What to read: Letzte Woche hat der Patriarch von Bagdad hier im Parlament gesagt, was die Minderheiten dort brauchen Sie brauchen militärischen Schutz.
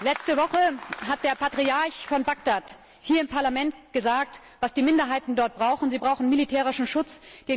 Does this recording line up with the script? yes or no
yes